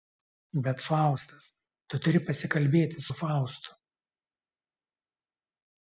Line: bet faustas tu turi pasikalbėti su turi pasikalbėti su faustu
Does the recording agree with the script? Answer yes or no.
no